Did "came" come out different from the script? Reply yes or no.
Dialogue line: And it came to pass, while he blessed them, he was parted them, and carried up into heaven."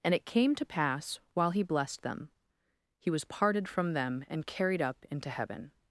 no